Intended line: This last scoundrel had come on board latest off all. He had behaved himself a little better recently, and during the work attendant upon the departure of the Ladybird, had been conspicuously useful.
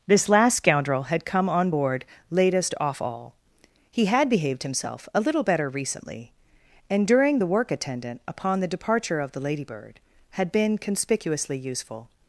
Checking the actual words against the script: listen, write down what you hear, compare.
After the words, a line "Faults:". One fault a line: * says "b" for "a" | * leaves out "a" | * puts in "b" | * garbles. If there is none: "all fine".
This last scoundrel had come on board latest off all. He had behaved himself a little better recently, and during the work attendant upon the departure of the Ladybird, had been conspicuously useful.
Faults:
all fine